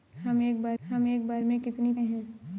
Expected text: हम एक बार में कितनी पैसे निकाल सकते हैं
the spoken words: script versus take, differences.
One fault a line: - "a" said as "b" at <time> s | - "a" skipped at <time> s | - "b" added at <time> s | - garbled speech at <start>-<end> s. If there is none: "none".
- "में कितनी पैसे निकाल सकते" said as "हम एक बार में कितनी" at 0.8 s